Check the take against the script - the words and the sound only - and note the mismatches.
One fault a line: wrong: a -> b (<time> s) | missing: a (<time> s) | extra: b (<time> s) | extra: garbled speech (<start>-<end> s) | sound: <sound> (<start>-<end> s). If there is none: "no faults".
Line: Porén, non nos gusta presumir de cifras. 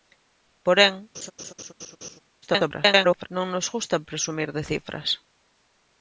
sound: laugh (1.1-2.2 s)
extra: garbled speech (2.4-3.3 s)